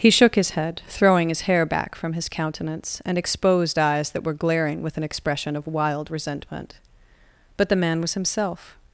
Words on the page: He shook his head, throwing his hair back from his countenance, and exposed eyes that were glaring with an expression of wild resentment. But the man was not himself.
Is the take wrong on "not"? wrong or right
wrong